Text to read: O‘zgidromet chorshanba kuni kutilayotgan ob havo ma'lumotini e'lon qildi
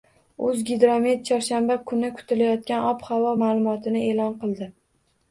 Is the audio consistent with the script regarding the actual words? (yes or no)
yes